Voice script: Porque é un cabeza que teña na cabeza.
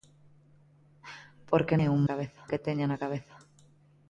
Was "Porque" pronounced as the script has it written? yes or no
yes